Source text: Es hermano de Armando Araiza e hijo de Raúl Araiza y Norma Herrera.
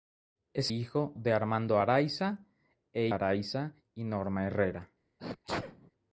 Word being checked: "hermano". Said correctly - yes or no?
no